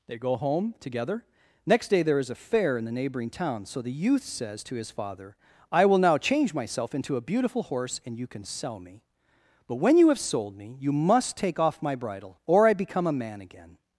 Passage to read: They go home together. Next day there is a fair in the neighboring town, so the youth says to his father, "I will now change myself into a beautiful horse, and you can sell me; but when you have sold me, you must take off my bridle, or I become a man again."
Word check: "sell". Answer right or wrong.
right